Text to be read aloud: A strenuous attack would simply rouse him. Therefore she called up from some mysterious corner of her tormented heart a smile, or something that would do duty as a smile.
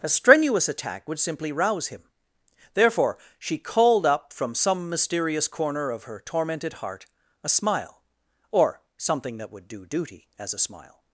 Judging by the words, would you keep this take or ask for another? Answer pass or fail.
pass